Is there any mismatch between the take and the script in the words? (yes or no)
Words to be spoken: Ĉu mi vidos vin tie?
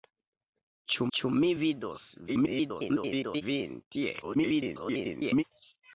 yes